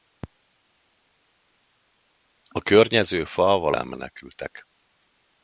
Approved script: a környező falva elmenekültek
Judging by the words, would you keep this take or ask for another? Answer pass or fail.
pass